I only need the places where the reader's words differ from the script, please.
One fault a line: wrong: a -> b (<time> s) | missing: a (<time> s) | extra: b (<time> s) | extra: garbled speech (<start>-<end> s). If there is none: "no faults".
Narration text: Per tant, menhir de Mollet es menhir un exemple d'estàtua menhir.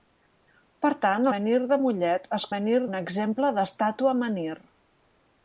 no faults